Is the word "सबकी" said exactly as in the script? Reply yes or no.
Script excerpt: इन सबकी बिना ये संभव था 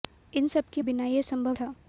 yes